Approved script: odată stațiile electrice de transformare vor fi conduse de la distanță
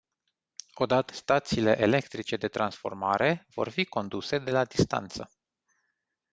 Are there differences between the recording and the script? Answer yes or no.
no